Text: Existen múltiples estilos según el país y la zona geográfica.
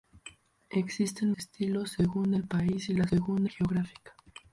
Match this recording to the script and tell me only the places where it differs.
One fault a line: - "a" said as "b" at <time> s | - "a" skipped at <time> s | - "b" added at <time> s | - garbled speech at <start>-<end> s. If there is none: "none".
- "múltiples" skipped at 1.3 s
- "zona" said as "según" at 3.1 s